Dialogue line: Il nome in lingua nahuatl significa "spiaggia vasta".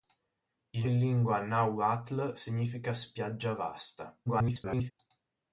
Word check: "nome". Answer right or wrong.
wrong